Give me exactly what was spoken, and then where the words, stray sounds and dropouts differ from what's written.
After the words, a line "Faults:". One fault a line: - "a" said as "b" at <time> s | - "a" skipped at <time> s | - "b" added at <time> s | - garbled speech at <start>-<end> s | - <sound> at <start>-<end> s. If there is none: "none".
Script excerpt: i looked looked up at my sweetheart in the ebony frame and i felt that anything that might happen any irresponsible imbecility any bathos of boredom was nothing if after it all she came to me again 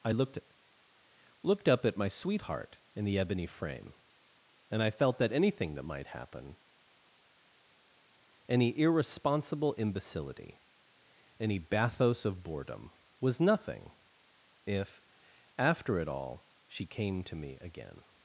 i looked looked up at my sweetheart in the ebony frame and i felt that anything that might happen any irresponsible imbecility any bathos of boredom was nothing if after it all she came to me again
Faults:
none